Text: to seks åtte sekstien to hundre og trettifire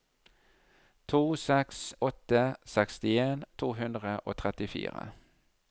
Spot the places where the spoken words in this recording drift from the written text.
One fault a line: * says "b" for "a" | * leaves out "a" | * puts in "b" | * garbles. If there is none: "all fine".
all fine